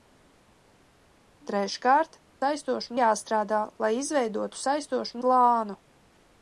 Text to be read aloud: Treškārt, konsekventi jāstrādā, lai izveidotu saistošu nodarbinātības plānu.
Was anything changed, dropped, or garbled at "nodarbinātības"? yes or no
yes